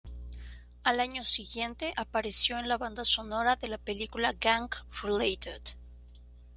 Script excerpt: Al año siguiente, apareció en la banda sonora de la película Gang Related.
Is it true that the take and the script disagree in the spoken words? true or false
false